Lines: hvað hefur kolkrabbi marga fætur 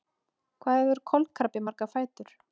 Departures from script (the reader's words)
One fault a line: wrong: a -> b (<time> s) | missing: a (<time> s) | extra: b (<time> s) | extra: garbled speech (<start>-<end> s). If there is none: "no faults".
no faults